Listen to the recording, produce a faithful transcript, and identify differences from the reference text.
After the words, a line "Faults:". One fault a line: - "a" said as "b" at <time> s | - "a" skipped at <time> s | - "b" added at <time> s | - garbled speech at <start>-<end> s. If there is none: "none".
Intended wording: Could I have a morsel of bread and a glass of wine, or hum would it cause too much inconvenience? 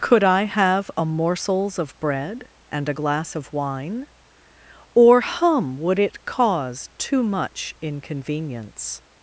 Could I have a morsels of bread and a glass of wine, or hum would it cause too much inconvenience?
Faults:
- "morsel" said as "morsels" at 1.1 s